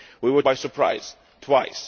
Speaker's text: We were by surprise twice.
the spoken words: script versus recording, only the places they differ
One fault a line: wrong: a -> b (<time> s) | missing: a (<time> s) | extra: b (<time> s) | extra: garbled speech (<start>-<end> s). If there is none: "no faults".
no faults